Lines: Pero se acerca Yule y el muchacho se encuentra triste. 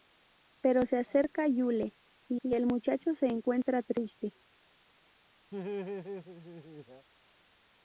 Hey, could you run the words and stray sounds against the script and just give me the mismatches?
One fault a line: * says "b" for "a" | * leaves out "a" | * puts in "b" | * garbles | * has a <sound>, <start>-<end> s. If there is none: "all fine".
* puts in "y"
* has a laugh, 5.5-7.1 s